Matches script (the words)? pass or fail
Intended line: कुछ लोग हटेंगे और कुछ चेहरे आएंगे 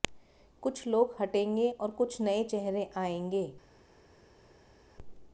fail